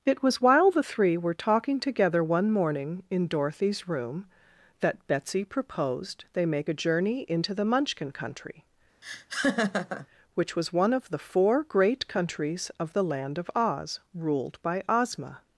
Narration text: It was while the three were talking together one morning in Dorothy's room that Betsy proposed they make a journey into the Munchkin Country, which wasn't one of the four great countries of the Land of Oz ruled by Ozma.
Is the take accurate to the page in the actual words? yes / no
no